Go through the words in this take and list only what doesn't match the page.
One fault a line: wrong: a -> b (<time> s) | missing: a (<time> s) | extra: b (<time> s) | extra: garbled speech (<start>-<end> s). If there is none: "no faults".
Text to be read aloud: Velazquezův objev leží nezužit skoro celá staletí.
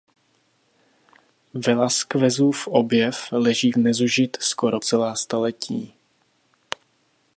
no faults